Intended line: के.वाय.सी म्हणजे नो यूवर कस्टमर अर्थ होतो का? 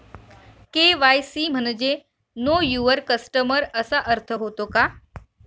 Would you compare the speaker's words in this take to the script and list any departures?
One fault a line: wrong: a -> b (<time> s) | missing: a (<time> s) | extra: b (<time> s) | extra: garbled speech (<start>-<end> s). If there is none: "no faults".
extra: असा (3.7 s)